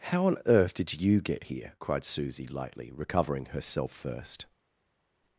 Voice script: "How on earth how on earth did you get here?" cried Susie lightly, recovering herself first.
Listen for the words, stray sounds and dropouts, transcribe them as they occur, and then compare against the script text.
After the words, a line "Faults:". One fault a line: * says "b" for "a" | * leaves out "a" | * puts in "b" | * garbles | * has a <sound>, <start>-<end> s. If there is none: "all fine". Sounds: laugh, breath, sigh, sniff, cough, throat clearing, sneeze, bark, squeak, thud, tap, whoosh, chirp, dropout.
"How on earth did you get here?" cried Susie lightly, recovering herself first.
Faults:
* leaves out "how on earth"